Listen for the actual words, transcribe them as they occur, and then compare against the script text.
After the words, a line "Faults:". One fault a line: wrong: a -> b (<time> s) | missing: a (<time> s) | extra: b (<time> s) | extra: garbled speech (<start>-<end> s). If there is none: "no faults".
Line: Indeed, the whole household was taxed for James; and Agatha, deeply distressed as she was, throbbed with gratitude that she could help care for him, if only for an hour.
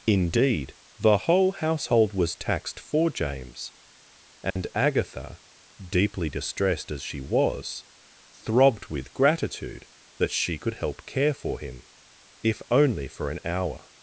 Indeed, the whole household was taxed for James; and Agatha, deeply distressed as she was, throbbed with gratitude that she could help care for him, if only for an hour.
Faults:
no faults